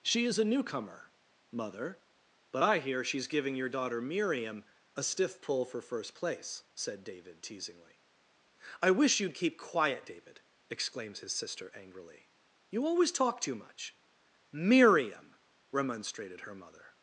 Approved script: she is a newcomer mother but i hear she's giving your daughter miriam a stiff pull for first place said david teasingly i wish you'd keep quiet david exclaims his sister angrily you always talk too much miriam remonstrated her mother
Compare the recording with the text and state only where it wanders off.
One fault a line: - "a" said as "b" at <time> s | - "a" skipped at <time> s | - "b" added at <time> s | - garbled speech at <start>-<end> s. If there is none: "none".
none